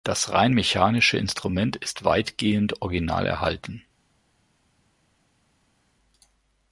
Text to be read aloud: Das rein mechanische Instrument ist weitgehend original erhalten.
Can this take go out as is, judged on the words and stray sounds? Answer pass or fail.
pass